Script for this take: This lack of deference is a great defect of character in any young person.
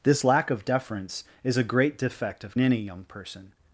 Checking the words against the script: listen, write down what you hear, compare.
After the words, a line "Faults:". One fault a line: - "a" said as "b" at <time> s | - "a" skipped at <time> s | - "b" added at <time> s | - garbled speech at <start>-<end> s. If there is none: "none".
This lack of deference is a great defect of any young person.
Faults:
- "character in" skipped at 2.5 s